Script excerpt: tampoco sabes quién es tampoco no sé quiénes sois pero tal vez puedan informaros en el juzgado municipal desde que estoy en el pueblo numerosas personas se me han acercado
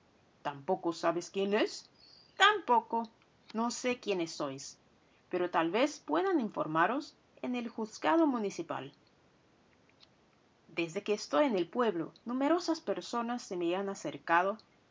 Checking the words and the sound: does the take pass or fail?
pass